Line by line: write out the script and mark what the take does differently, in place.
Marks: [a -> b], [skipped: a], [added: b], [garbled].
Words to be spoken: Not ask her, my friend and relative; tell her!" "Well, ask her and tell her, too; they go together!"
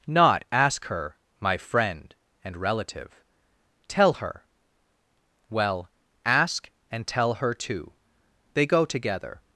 Not ask her, my friend and relative; tell her!" "Well, ask [skipped: her] and tell her, too; they go together!"